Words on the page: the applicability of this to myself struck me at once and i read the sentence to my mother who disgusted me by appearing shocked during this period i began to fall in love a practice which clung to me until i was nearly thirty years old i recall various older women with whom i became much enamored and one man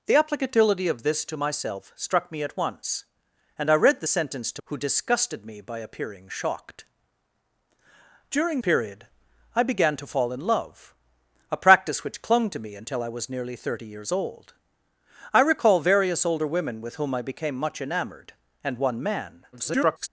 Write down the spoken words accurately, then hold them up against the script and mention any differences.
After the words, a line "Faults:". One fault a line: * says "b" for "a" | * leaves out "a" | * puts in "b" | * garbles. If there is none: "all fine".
the applicability of this to myself struck me at once and i read the sentence to who disgusted me by appearing shocked during period i began to fall in love a practice which clung to me until i was nearly thirty years old i recall various older women with whom i became much enamored and one man [garbled]
Faults:
* leaves out "my mother"
* leaves out "this"
* garbles